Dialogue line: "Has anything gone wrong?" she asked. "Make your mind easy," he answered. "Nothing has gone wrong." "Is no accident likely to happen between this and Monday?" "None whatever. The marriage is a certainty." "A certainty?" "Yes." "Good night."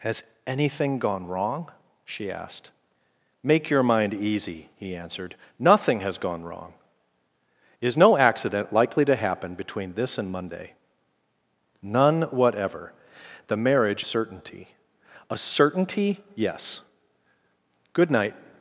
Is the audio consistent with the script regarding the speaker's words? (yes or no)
no